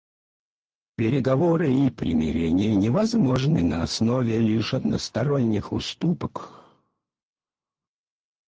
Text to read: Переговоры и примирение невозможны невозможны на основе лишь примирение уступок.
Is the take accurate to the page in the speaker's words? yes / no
no